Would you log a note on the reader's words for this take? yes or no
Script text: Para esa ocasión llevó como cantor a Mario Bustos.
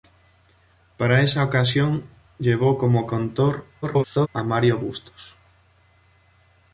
yes